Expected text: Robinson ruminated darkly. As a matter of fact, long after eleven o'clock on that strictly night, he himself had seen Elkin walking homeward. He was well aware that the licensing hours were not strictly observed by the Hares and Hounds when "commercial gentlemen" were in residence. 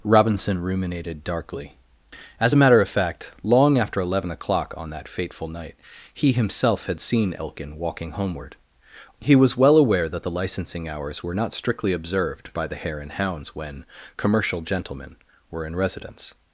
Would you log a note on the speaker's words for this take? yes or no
yes